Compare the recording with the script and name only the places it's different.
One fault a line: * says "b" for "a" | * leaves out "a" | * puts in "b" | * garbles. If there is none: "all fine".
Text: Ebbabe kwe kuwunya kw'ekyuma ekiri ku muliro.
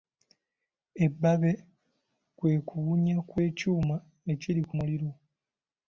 all fine